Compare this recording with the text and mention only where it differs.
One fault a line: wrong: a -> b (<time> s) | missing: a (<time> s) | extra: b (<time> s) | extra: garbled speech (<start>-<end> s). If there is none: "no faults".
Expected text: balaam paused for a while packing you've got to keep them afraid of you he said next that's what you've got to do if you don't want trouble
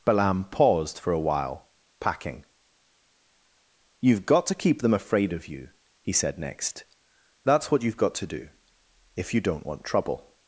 no faults